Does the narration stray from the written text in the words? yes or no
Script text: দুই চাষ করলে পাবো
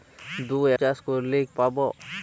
no